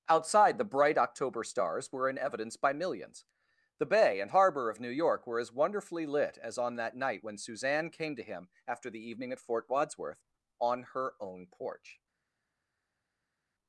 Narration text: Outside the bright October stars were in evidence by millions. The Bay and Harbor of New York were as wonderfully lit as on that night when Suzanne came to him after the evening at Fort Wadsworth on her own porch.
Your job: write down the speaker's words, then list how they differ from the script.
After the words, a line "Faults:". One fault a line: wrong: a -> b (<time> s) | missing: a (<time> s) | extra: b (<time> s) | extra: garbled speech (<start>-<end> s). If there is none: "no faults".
Outside the bright October stars were in evidence by millions. The Bay and Harbor of New York were as wonderfully lit as on that night when Suzanne came to him after the evening at Fort Wadsworth on her own porch.
Faults:
no faults